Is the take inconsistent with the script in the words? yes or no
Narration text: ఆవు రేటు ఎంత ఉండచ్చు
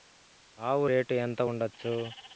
no